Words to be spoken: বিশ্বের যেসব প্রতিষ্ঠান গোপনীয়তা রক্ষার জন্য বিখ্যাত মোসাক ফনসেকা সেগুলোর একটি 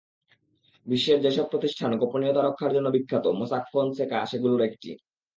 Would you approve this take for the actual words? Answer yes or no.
yes